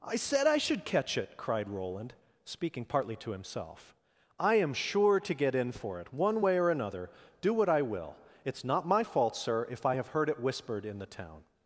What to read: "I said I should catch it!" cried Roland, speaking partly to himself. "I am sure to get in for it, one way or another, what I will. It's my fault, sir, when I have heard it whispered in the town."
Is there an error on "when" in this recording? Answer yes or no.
yes